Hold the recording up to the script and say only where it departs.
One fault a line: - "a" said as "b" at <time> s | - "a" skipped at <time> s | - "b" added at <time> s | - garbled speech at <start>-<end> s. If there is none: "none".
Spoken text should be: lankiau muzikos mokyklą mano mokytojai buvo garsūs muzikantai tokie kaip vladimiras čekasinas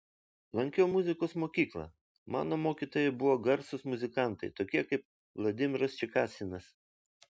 none